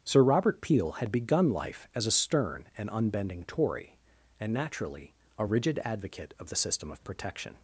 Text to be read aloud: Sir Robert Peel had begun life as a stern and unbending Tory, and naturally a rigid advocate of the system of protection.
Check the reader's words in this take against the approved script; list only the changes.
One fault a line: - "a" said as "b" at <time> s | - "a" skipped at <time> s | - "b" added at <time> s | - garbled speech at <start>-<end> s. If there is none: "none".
none